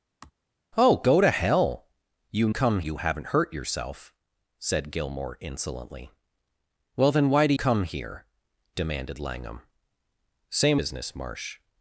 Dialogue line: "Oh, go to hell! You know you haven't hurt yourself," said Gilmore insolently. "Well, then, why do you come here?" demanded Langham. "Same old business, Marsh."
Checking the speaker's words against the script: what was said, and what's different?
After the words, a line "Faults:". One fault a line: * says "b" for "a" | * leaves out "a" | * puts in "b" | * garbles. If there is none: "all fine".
"Oh, go to hell! You come you haven't hurt yourself," said Gilmore insolently. "Well, then, why do come here?" demanded Langham. "Same business, Marsh."
Faults:
* says "come" for "know"
* leaves out "you"
* leaves out "old"